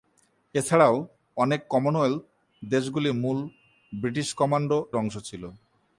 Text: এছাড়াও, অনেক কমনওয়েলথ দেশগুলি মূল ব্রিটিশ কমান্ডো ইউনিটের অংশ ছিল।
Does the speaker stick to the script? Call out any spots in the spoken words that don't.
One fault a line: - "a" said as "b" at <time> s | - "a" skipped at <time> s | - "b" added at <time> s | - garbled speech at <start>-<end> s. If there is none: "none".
- "ইউনিটের" skipped at 4.8 s